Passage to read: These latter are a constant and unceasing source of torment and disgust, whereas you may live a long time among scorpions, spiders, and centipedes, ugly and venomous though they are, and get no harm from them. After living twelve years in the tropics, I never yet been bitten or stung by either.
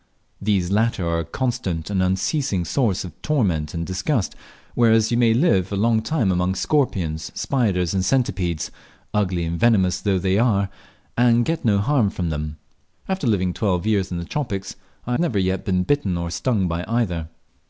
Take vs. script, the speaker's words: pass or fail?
pass